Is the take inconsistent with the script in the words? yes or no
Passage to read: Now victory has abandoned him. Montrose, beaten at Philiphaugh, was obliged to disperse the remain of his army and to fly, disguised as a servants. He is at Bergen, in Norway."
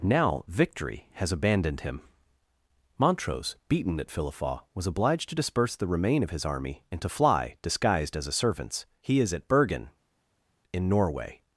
no